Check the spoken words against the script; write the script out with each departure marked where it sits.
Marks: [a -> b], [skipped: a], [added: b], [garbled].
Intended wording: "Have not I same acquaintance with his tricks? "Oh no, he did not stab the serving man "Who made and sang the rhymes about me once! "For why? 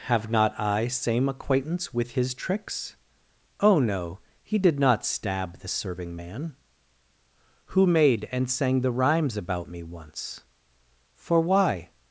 "Have not I same acquaintance with his tricks? "Oh no, he did not stab the serving man "Who made and sang the rhymes about me once! "For why?